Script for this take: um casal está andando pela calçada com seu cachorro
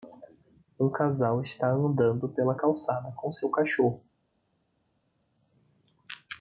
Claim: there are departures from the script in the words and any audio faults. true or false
false